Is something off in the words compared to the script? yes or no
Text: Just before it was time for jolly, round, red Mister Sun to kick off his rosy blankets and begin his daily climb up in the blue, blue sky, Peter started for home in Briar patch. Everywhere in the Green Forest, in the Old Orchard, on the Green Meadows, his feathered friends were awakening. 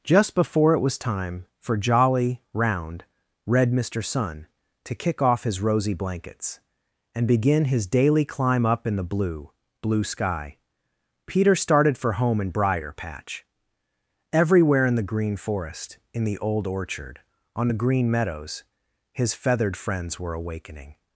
no